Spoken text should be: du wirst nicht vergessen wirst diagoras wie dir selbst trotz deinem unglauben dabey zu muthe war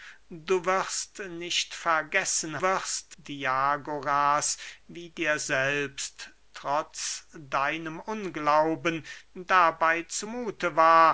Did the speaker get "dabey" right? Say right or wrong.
right